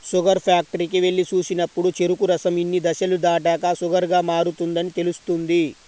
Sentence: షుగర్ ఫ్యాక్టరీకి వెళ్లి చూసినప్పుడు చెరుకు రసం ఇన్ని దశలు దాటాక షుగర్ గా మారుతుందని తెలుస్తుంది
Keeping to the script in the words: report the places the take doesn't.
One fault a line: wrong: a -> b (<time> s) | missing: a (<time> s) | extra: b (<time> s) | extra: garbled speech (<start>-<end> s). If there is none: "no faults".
no faults